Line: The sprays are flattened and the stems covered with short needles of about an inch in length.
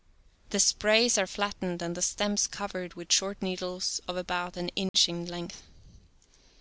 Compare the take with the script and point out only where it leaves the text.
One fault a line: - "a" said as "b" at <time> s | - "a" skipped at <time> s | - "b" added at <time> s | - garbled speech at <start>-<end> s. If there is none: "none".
none